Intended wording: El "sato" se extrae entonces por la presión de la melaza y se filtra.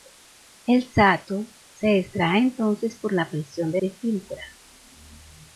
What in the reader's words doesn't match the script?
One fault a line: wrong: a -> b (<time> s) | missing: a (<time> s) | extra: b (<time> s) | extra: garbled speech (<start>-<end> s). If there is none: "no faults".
missing: la melaza y (3.8 s)